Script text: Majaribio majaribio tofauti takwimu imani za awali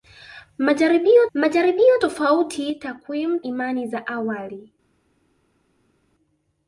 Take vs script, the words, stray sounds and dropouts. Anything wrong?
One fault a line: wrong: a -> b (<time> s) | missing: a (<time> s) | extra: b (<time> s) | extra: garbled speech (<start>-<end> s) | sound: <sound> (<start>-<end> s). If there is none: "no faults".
no faults